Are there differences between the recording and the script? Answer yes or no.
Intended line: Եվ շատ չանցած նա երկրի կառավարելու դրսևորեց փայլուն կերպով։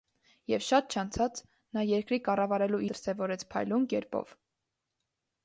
no